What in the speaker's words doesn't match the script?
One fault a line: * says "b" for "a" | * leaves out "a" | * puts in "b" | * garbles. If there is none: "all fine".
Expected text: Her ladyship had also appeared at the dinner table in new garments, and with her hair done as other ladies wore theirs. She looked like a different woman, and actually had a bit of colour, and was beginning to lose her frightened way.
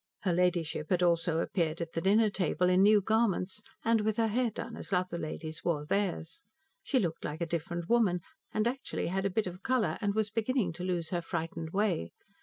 all fine